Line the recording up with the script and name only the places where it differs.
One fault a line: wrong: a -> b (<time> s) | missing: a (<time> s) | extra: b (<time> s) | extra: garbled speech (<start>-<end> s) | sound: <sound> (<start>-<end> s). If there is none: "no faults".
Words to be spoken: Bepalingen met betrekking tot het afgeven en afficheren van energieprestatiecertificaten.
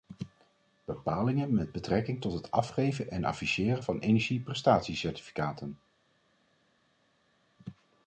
no faults